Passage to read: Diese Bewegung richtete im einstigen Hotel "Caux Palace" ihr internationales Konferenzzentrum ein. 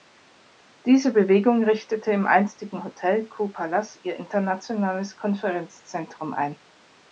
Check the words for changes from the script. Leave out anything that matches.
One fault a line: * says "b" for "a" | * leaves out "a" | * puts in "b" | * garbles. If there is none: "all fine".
all fine